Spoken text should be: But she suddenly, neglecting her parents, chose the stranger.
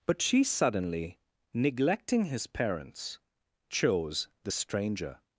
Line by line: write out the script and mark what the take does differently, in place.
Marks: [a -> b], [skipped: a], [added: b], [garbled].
But she suddenly, neglecting [her -> his] parents, chose the stranger.